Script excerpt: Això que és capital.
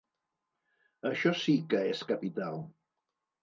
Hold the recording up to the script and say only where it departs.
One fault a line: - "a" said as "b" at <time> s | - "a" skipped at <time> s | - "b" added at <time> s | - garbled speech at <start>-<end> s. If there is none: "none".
- "sí" added at 1.4 s